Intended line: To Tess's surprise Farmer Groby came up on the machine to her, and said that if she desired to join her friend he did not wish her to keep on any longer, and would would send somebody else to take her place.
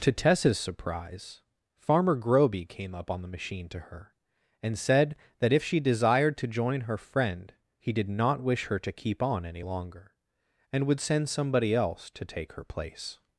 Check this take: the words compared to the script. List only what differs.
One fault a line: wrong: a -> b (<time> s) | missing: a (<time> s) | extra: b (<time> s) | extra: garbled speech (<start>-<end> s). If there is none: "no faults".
missing: would (11.0 s)